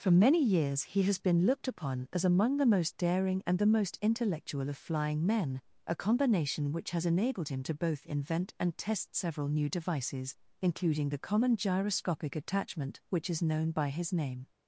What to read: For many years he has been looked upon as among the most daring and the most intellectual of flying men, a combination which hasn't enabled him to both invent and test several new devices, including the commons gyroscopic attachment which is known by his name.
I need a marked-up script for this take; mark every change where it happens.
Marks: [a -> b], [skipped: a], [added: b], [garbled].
For many years he has been looked upon as among the most daring and the most intellectual of flying men, a combination which [hasn't -> has] enabled him to both invent and test several new devices, including the [commons -> common] gyroscopic attachment which is known by his name.